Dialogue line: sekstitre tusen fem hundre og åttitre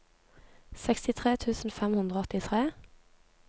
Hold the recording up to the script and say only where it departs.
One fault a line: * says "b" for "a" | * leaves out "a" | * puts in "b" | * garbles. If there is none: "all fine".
all fine